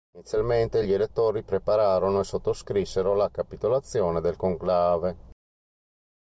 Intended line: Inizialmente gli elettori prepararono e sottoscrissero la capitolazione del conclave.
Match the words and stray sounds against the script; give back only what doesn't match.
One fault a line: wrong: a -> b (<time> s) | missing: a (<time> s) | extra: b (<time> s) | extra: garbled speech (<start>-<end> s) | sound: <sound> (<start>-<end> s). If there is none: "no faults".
no faults